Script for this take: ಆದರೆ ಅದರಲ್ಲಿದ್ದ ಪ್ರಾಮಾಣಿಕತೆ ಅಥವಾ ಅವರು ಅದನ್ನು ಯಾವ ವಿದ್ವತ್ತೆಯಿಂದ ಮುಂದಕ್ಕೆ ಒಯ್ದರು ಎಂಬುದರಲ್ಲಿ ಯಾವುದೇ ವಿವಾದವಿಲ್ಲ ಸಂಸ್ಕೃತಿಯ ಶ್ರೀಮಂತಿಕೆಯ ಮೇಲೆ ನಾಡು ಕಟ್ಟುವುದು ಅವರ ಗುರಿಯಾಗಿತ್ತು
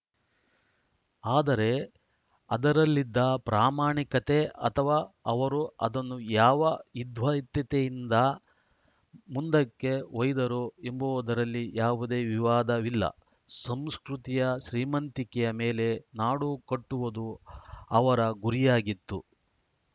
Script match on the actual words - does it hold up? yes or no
yes